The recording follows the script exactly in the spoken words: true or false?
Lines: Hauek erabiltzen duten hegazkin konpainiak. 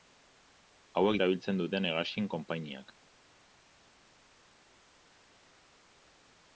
true